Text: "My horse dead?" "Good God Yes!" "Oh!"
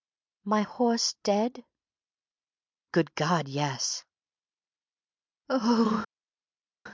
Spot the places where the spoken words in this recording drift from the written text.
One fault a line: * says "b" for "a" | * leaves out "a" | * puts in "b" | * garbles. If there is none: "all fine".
all fine